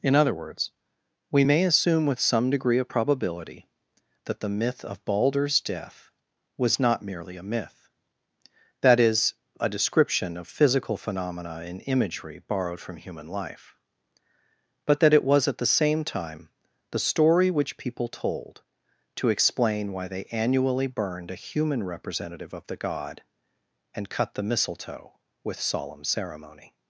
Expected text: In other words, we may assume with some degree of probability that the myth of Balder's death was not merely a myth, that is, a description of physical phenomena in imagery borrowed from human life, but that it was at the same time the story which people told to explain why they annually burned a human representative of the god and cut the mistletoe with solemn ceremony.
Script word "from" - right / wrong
right